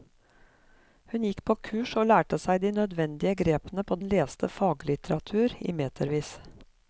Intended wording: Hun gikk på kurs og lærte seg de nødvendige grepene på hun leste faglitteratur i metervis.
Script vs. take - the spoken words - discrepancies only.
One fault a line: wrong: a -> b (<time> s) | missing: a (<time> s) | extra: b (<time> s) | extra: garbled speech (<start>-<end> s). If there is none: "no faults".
no faults